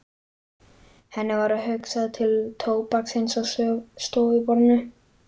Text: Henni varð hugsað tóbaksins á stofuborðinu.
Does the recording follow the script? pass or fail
fail